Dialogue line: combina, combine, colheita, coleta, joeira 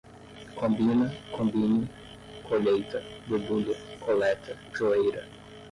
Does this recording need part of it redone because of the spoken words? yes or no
yes